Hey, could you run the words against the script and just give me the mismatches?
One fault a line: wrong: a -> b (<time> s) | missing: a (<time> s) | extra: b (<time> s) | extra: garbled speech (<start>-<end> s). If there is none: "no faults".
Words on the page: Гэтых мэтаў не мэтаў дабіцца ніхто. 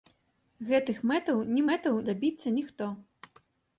no faults